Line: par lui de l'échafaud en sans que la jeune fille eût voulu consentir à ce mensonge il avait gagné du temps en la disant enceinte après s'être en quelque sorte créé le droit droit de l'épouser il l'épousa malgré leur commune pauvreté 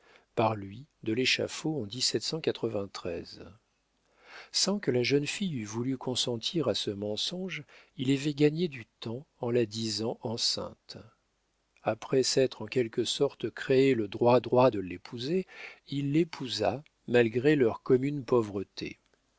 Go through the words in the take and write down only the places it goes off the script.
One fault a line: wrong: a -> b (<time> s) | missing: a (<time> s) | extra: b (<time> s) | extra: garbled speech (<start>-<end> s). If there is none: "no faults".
no faults